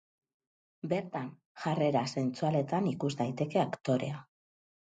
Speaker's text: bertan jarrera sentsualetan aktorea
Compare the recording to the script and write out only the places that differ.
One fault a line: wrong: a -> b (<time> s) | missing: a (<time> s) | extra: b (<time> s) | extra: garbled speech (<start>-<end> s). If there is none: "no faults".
extra: ikus daiteke (2.9 s)